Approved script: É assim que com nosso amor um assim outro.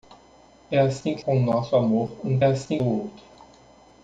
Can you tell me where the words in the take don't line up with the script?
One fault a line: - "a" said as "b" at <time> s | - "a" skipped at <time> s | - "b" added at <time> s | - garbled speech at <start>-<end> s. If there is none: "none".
none